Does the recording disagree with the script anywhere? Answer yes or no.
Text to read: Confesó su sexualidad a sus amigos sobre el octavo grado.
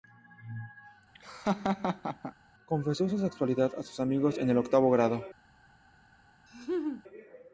yes